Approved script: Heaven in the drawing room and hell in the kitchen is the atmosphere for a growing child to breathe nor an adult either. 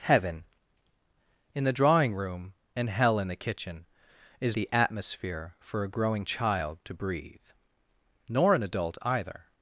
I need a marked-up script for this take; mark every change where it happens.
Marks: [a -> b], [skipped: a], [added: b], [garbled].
Heaven in the drawing room and hell in the kitchen is the atmosphere for a growing child to breathe nor an adult either.